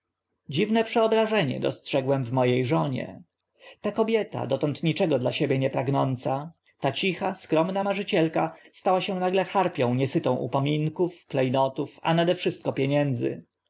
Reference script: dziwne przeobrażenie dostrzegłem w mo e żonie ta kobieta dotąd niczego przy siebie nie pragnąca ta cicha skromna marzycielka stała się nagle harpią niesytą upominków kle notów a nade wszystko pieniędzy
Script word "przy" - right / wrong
wrong